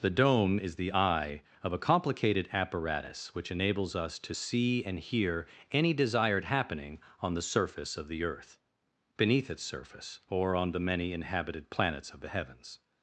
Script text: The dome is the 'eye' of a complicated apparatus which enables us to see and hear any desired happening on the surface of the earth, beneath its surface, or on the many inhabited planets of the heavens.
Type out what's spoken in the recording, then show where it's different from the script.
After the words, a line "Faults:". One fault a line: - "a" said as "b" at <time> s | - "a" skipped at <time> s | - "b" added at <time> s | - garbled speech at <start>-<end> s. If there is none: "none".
The dome is the 'eye' of a complicated apparatus which enables us to see and hear any desired happening on the surface of the earth, beneath its surface, or on the many inhabited planets of the heavens.
Faults:
none